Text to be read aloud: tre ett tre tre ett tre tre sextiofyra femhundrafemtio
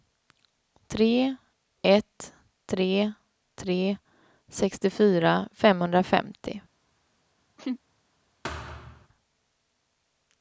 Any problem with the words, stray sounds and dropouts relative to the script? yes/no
yes